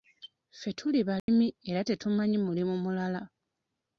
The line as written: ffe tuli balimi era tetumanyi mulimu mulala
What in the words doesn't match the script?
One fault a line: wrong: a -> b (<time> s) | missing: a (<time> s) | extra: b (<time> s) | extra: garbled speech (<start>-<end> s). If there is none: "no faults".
no faults